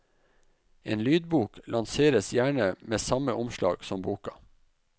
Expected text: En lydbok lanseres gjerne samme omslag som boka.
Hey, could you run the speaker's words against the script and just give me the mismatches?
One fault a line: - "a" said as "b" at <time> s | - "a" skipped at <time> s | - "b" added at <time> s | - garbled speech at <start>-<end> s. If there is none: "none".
- "med" added at 2.8 s